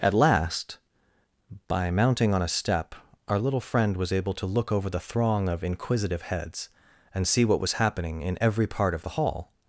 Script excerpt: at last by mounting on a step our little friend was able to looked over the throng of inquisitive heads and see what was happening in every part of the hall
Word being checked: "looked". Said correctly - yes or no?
no